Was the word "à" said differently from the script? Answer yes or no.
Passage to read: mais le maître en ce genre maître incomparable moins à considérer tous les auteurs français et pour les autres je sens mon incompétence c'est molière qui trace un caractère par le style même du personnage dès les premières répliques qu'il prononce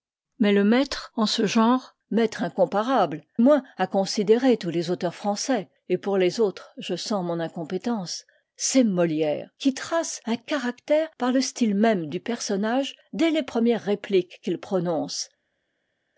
no